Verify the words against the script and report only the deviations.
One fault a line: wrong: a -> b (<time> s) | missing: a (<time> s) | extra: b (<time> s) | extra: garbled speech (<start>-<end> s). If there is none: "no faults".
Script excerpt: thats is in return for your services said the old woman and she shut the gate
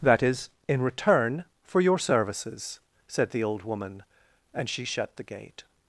wrong: thats -> that (0.0 s)